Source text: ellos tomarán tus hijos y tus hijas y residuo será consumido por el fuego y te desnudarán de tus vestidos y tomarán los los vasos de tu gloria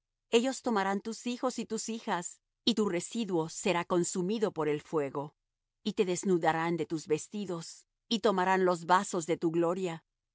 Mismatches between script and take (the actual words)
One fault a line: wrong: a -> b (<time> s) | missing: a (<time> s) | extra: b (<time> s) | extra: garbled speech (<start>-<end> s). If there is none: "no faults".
extra: tu (2.7 s)
missing: los (8.8 s)